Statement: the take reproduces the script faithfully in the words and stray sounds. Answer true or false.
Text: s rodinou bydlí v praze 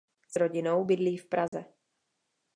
false